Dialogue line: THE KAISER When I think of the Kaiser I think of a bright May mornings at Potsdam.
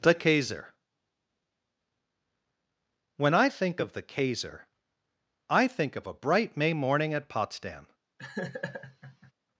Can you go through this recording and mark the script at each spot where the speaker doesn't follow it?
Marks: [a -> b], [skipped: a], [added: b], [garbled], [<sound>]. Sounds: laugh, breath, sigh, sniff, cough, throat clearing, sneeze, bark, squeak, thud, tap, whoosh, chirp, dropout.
THE KAISER When I think of the Kaiser I think of a bright May [mornings -> morning] at Potsdam. [laugh]